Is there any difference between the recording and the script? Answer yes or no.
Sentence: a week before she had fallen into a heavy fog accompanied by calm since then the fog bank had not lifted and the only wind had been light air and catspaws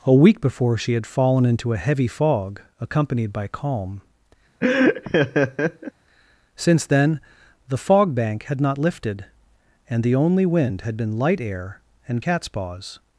no